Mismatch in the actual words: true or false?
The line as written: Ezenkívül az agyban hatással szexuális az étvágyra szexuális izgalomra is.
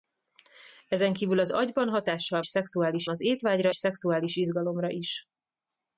false